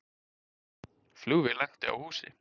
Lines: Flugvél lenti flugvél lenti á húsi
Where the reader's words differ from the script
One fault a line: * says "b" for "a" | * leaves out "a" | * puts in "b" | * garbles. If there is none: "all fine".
* leaves out "flugvél lenti"